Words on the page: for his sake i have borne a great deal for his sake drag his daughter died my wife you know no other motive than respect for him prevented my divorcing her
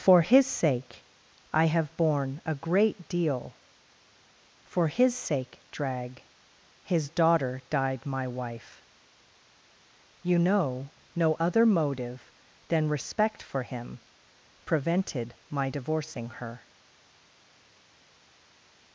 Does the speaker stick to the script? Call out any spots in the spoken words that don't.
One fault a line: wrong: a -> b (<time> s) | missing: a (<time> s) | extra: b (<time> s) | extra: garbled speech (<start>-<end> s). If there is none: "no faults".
no faults